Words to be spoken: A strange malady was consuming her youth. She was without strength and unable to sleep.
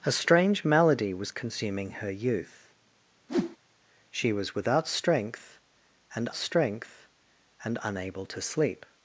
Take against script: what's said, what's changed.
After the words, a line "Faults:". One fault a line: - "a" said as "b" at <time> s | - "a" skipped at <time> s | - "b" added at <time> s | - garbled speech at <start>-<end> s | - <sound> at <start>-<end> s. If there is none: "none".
A strange malady was consuming her youth. She was without strength and strength and unable to sleep.
Faults:
- whoosh at 3.3-3.6 s
- "strength and" added at 6.3 s